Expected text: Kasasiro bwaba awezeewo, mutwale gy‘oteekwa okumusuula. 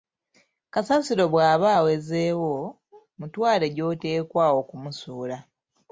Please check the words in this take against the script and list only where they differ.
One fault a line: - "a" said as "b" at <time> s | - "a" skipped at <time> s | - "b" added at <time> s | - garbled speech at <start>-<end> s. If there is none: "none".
none